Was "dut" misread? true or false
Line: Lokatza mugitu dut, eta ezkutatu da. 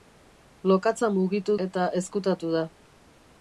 true